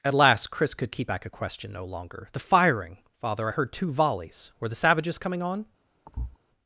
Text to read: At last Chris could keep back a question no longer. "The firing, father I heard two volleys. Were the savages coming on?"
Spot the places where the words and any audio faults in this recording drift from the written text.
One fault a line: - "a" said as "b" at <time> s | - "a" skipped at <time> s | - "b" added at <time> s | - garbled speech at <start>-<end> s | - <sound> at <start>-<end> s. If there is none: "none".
- thud at 6.1-6.4 s